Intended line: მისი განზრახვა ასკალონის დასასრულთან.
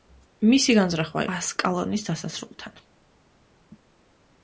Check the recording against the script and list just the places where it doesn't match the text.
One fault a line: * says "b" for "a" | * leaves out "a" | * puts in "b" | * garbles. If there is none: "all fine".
all fine